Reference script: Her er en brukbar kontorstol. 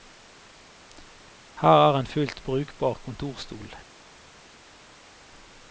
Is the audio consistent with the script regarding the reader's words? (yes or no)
no